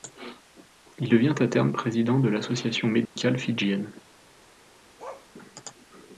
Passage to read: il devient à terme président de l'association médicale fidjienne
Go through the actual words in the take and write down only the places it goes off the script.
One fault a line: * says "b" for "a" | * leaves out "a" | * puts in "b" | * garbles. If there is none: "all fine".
all fine